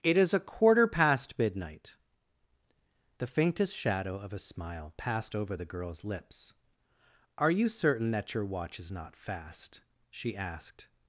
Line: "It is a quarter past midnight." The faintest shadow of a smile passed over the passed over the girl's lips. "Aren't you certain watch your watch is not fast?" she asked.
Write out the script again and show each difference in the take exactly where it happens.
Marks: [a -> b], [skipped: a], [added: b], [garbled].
"It is a quarter past midnight." The faintest shadow of a smile passed over the [skipped: passed over the] girl's lips. ["Aren't -> Are] you certain [watch -> that] your watch is not fast?" she asked.